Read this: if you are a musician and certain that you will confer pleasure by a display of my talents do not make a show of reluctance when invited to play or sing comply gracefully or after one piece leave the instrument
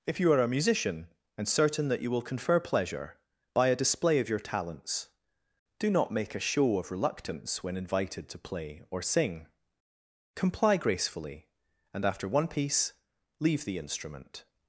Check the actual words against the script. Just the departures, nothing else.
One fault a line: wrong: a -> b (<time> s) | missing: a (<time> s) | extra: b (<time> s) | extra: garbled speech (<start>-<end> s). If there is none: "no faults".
wrong: my -> your (4.3 s)
wrong: or -> and (11.9 s)